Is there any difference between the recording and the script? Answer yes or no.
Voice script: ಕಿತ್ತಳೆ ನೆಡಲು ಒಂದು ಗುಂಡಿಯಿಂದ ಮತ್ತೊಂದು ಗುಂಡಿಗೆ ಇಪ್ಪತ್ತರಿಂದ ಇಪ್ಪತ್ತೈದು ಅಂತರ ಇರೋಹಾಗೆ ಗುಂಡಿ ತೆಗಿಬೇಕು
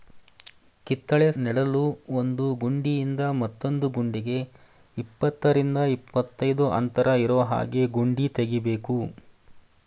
no